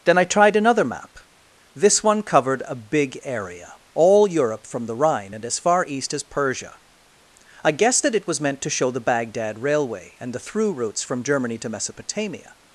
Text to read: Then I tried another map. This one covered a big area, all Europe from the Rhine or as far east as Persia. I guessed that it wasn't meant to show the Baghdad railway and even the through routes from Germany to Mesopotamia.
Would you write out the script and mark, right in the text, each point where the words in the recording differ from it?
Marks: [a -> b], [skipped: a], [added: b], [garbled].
Then I tried another map. This one covered a big area, all Europe from the Rhine [or -> and] as far east as Persia. I guessed that it [wasn't -> was] meant to show the Baghdad railway and [skipped: even] the through routes from Germany to Mesopotamia.